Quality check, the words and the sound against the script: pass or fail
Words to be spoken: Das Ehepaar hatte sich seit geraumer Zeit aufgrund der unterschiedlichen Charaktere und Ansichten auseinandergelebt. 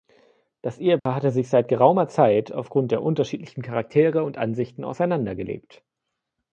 fail